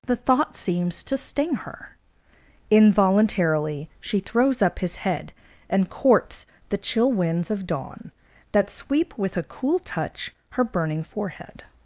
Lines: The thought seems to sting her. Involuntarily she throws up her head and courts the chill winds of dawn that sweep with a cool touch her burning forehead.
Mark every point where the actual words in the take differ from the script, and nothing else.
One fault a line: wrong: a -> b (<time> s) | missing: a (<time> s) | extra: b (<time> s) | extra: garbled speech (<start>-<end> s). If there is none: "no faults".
wrong: her -> his (4.8 s)